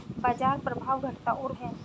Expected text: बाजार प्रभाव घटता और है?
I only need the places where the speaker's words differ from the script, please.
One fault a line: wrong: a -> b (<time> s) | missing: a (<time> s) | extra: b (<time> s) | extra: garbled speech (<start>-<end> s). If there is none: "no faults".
no faults